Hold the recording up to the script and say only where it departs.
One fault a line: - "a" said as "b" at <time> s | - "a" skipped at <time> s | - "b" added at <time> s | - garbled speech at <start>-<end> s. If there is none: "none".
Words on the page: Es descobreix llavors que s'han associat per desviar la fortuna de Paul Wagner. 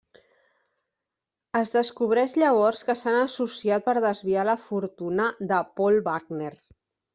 none